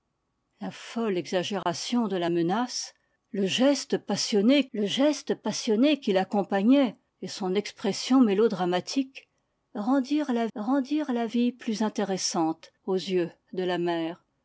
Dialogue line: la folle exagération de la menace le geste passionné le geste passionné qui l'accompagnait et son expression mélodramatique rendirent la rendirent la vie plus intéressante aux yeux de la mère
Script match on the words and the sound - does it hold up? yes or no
no